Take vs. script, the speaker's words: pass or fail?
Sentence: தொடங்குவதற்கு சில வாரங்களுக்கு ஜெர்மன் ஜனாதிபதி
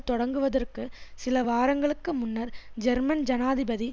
fail